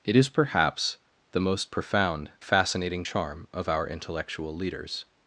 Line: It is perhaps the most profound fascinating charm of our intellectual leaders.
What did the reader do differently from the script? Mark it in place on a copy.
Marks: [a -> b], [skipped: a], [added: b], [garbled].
It is perhaps the most profound fascinating charm of our intellectual leaders.